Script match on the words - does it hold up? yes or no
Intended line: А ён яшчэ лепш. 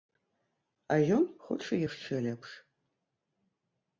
no